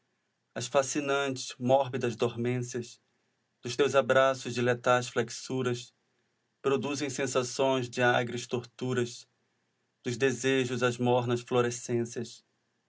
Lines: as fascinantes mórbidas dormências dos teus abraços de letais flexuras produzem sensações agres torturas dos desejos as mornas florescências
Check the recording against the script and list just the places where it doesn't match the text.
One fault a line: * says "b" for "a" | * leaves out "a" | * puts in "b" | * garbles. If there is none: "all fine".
* puts in "de"